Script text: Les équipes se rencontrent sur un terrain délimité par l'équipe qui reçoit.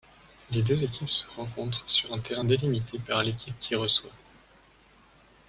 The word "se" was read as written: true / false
true